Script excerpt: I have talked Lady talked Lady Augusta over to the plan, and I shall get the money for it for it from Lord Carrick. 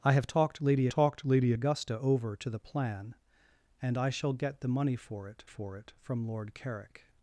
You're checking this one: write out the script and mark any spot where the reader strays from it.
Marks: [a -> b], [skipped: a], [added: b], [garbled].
I have talked Lady talked Lady Augusta over to the plan, and I shall get the money for it for it from Lord Carrick.